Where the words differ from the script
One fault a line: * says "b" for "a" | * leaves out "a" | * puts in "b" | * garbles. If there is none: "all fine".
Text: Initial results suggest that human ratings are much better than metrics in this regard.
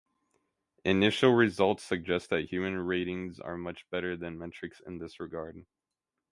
all fine